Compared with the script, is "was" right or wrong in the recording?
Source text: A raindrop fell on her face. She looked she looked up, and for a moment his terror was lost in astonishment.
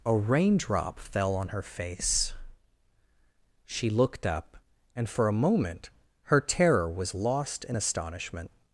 right